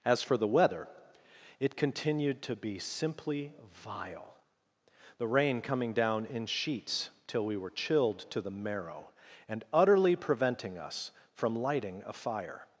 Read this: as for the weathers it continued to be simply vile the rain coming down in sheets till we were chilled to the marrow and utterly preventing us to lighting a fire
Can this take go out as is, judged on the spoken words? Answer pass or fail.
fail